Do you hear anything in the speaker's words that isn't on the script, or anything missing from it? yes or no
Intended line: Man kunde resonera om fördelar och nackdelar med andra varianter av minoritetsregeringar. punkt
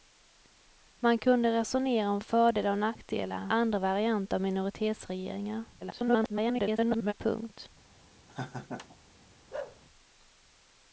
yes